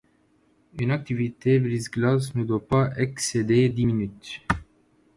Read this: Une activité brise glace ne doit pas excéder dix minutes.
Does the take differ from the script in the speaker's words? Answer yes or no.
no